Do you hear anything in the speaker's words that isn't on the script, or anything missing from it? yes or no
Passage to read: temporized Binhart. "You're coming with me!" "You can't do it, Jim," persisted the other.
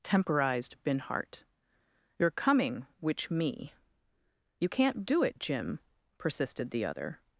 yes